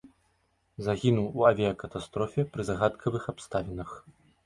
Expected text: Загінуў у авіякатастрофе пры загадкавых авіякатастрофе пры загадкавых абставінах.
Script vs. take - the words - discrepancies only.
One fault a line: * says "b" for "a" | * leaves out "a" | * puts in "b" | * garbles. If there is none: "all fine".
* leaves out "авіякатастрофе пры загадкавых"